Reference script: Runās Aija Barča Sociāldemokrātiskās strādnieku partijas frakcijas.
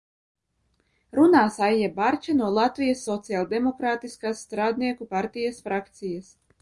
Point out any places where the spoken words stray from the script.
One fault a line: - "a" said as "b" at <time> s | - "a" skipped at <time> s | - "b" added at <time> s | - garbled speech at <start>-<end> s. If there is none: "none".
- "no Latvijas" added at 2.4 s